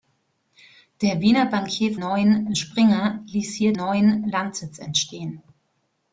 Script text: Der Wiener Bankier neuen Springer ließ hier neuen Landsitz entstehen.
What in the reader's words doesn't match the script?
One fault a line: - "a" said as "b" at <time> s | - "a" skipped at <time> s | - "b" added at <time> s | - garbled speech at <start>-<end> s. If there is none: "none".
none